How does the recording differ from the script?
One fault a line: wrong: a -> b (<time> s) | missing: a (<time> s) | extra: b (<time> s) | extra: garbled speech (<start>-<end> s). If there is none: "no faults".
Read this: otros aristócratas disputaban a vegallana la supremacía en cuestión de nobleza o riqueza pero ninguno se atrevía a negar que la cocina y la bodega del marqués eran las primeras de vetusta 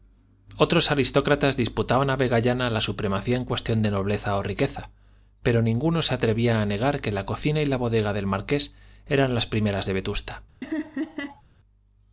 no faults